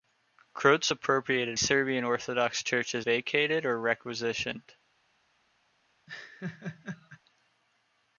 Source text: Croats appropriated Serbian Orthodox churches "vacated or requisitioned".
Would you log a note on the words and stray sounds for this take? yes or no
yes